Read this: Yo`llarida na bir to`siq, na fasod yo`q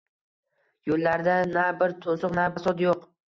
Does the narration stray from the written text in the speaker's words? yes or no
no